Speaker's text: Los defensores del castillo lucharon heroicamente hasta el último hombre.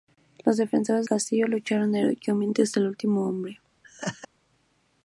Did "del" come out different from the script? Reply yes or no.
yes